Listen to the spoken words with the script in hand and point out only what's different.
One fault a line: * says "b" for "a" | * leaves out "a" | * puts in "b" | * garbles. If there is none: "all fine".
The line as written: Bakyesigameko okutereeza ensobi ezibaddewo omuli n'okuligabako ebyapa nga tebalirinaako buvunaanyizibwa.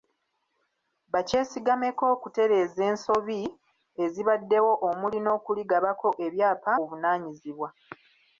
* leaves out "nga tebalirinaako"